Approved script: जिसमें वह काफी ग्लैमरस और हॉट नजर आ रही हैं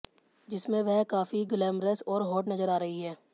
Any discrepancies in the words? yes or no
no